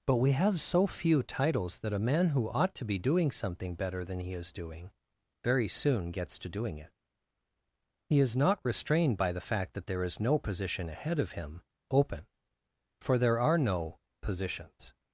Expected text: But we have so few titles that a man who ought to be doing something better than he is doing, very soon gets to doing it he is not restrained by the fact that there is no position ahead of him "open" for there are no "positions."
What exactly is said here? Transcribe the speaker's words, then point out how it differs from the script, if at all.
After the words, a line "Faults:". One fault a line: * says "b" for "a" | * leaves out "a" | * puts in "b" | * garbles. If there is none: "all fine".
But we have so few titles that a man who ought to be doing something better than he is doing, very soon gets to doing it he is not restrained by the fact that there is no position ahead of him "open" for there are no "positions."
Faults:
all fine